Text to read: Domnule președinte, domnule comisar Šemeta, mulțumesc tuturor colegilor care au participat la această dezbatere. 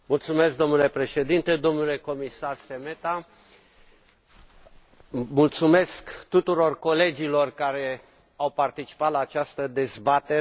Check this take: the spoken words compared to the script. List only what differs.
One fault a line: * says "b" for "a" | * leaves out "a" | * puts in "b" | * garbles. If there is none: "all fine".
all fine